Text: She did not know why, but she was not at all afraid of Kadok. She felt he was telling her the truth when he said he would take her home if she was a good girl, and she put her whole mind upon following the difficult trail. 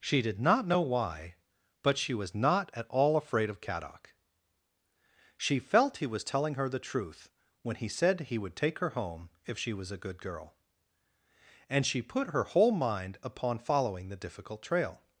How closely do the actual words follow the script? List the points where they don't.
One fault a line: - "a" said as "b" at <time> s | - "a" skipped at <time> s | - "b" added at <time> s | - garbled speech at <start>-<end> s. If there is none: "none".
none